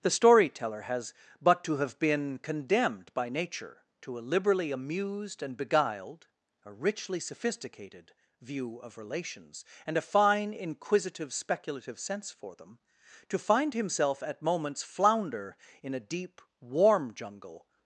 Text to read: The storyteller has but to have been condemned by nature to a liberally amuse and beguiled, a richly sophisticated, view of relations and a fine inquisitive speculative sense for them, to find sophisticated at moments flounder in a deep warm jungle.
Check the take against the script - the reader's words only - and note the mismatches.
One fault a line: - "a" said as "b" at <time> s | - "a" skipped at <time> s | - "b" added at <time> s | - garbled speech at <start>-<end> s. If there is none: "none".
- "amuse" said as "amused" at 4.7 s
- "sophisticated" said as "himself" at 13.8 s